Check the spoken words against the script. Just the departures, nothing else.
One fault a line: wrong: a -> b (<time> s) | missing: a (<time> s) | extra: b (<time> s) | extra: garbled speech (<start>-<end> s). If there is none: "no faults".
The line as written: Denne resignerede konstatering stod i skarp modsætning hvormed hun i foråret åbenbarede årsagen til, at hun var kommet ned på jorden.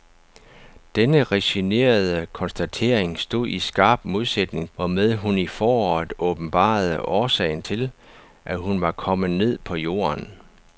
no faults